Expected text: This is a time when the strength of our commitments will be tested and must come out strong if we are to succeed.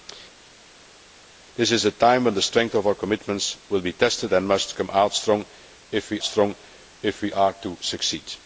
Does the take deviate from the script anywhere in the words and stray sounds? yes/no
yes